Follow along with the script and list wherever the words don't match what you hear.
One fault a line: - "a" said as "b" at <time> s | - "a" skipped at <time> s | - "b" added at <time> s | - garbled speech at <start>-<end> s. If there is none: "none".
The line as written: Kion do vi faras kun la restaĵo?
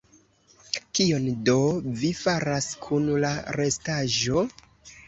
none